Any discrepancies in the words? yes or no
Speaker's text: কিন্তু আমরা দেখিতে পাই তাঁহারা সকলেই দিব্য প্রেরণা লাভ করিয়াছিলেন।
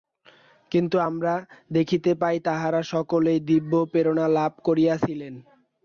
no